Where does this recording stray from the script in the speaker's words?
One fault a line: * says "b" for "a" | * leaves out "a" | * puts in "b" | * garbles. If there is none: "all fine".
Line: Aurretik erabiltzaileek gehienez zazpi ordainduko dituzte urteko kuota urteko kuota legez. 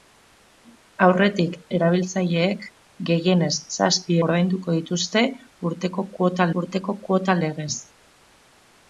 all fine